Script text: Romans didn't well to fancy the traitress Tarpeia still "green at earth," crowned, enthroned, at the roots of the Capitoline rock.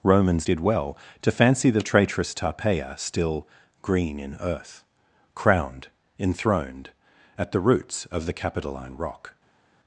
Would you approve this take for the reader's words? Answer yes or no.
no